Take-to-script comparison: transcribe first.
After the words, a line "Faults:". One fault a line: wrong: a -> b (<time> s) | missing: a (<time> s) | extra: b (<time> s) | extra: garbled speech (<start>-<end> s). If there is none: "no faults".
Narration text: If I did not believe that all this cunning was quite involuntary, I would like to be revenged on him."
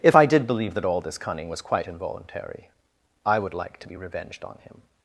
If I did believe that all this cunning was quite involuntary, I would like to be revenged on him."
Faults:
missing: not (0.5 s)